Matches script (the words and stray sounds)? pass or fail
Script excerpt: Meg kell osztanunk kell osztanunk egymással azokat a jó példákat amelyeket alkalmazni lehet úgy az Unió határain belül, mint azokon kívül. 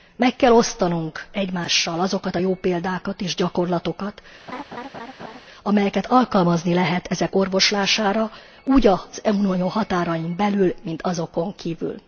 fail